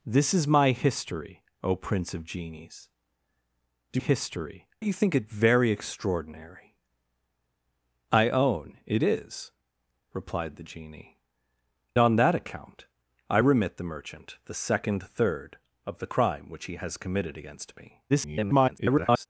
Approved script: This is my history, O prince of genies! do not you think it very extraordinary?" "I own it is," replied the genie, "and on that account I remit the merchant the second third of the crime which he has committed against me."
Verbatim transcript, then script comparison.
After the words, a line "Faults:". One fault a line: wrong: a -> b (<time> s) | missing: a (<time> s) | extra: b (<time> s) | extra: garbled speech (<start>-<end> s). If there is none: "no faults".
This is my history, O prince of genies! do history you think it very extraordinary?" "I own it is," replied the genie, "on that account I remit the merchant the second third of the crime which he has committed against me." [garbled]
Faults:
wrong: not -> history (4.0 s)
missing: and (11.2 s)
extra: garbled speech (18.1-19.3 s)